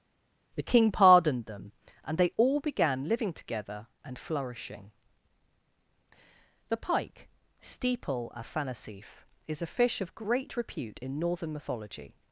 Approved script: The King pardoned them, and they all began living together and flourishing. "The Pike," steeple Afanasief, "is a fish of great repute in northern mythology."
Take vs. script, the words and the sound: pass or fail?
pass